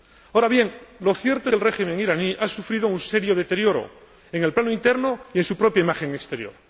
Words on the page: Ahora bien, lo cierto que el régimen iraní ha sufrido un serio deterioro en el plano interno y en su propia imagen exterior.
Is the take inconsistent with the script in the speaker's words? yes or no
no